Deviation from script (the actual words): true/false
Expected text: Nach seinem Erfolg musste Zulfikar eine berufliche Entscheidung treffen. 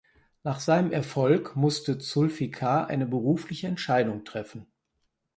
false